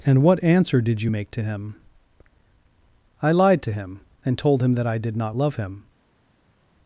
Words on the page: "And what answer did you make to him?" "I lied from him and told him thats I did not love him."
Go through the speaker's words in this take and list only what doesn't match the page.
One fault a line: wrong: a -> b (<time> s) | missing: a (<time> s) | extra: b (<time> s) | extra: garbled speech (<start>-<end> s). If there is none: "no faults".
wrong: from -> to (3.6 s)
wrong: thats -> that (4.7 s)